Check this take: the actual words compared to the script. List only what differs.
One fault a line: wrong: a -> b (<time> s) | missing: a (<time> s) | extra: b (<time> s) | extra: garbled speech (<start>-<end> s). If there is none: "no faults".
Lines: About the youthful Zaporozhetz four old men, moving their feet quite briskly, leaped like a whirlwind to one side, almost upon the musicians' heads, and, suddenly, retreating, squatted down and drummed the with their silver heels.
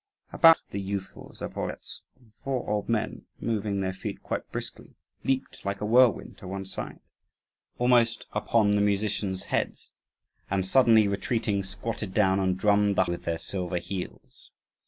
no faults